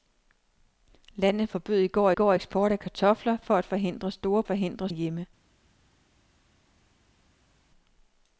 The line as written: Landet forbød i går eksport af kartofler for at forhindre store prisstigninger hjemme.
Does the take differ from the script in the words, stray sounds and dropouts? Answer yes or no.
yes